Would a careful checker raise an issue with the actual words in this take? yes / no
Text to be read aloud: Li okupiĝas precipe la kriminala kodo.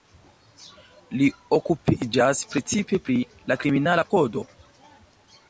yes